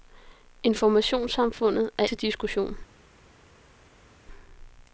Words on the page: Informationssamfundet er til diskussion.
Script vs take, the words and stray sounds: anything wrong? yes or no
no